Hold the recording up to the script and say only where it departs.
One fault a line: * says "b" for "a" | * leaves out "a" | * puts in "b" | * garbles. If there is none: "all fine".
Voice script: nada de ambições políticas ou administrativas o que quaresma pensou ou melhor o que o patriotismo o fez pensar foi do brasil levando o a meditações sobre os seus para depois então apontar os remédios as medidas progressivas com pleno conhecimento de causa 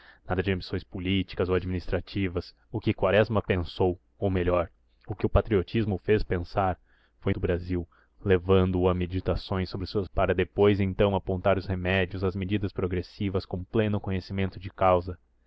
all fine